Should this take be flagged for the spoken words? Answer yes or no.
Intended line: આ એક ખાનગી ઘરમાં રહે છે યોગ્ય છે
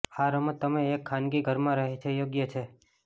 yes